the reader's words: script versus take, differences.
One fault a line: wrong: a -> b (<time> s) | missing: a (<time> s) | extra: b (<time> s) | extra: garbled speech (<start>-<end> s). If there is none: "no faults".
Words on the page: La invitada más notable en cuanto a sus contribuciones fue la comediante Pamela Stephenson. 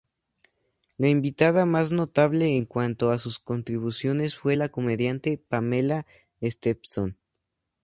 no faults